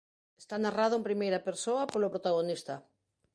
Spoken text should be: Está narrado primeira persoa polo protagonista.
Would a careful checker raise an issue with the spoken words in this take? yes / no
yes